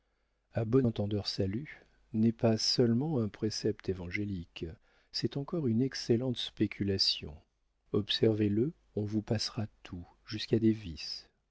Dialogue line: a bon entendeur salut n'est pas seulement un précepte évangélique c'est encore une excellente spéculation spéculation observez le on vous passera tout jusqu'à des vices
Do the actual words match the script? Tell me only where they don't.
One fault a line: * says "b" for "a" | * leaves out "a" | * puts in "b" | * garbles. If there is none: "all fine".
* leaves out "spéculation"